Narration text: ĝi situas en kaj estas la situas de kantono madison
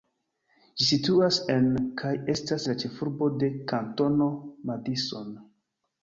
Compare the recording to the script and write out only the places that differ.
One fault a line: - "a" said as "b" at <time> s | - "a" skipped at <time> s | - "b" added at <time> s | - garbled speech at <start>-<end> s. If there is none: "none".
- "situas" said as "ĉefurbo" at 2.8 s